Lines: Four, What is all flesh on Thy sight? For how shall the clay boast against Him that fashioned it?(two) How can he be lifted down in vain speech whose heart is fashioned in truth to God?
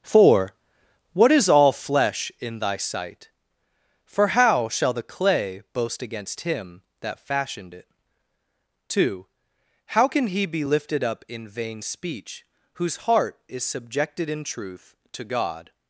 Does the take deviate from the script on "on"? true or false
true